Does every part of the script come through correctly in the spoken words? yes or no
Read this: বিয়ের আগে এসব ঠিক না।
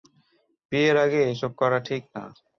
no